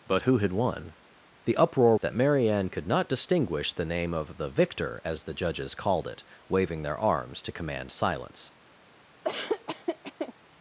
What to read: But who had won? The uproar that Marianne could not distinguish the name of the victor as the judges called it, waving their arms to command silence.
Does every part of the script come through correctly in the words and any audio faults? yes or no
no